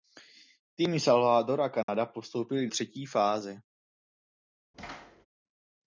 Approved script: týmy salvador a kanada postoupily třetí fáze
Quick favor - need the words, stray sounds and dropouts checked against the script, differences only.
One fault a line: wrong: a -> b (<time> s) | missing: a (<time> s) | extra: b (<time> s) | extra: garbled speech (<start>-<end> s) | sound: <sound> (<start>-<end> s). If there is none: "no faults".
sound: dropout (1.8-1.9 s)
sound: thud (4.7-5.3 s)